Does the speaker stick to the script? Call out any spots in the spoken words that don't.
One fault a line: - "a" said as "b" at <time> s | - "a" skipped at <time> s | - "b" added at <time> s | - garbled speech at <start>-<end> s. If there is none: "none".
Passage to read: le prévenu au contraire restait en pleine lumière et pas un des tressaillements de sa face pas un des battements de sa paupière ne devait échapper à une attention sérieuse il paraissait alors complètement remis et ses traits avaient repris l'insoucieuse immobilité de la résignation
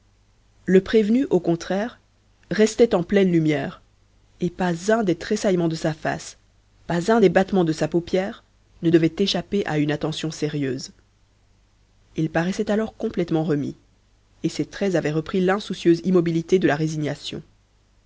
none